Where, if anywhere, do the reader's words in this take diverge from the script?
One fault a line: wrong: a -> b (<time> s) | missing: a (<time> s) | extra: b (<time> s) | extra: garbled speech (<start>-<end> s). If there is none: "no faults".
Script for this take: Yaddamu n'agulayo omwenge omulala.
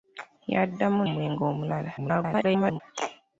missing: n'agulayo (1.0 s)
extra: garbled speech (2.0-2.8 s)